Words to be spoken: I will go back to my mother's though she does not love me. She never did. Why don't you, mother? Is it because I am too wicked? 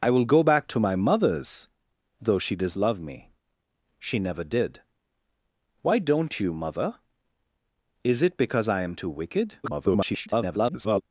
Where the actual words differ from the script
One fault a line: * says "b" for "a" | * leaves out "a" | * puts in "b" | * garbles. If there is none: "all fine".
* leaves out "not"
* garbles